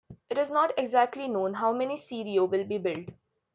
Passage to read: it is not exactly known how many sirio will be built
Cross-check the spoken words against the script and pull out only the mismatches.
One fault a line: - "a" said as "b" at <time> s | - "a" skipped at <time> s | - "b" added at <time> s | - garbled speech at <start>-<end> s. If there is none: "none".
none